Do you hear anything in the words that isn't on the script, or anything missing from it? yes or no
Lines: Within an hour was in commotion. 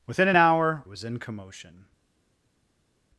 no